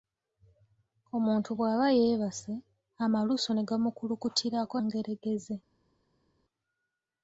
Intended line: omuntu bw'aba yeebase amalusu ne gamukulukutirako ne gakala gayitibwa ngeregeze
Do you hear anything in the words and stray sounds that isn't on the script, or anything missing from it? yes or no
yes